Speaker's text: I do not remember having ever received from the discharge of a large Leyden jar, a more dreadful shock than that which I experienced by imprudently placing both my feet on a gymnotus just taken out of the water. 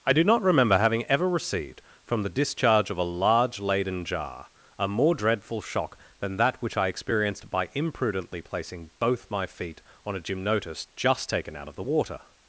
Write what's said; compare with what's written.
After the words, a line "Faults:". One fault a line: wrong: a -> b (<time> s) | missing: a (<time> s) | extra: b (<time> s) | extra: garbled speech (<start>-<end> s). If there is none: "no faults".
I do not remember having ever received from the discharge of a large Leyden jar, a more dreadful shock than that which I experienced by imprudently placing both my feet on a gymnotus just taken out of the water.
Faults:
no faults